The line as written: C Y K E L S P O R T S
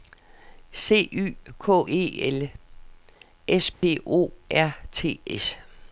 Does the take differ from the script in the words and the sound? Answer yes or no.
yes